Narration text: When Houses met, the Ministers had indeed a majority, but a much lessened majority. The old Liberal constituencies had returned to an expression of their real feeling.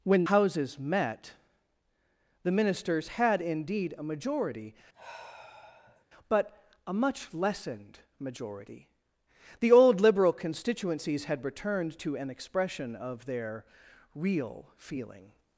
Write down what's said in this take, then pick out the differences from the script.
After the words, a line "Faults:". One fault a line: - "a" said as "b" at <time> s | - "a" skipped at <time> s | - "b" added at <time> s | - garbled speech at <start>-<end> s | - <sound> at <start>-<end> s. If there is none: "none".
When Houses met, the Ministers had indeed a majority, but a much lessened majority. The old Liberal constituencies had returned to an expression of their real feeling.
Faults:
- sigh at 4.9-6.0 s